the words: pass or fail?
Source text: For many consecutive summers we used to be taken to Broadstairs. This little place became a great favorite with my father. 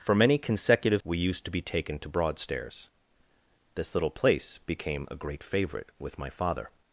fail